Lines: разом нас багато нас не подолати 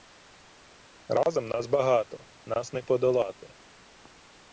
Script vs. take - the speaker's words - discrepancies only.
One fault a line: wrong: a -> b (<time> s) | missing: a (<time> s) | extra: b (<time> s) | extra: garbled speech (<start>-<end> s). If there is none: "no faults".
no faults